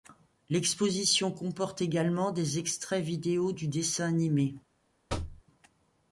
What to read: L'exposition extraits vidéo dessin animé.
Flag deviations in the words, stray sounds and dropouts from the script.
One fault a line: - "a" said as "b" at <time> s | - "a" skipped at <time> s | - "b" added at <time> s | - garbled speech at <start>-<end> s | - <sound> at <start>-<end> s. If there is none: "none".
- "comporte également des" added at 1.3 s
- "du" added at 3.5 s
- thud at 5.1-5.4 s